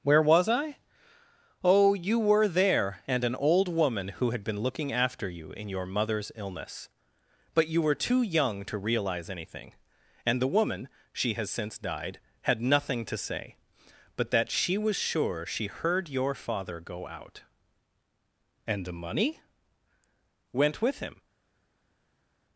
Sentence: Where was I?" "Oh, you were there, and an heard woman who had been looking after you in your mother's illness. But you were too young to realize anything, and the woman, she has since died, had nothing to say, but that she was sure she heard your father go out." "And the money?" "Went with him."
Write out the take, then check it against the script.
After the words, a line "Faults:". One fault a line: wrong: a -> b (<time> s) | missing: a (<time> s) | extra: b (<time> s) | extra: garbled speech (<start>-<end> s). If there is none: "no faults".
Where was I?" "Oh, you were there, and an old woman who had been looking after you in your mother's illness. But you were too young to realize anything, and the woman, she has since died, had nothing to say, but that she was sure she heard your father go out." "And the money?" "Went with him."
Faults:
wrong: heard -> old (3.4 s)